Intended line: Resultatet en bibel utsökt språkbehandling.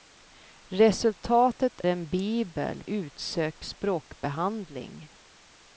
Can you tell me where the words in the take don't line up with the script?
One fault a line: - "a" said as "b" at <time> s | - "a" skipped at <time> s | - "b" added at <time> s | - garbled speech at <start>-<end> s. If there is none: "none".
none